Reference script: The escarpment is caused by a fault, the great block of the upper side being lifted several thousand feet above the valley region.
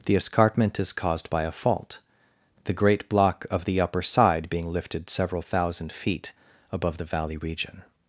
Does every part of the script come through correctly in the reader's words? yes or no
yes